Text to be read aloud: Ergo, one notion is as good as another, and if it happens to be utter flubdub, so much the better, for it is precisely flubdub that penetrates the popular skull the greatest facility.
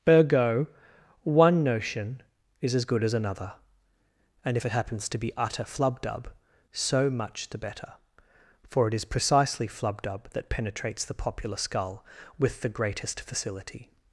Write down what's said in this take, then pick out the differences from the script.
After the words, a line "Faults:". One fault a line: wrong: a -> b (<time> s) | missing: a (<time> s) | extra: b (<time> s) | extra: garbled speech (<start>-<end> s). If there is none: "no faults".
Ergo, one notion is as good as another, and if it happens to be utter flubdub, so much the better, for it is precisely flubdub that penetrates the popular skull with the greatest facility.
Faults:
extra: with (12.4 s)